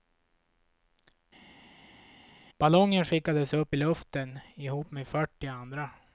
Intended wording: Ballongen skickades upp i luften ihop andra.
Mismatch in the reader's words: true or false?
true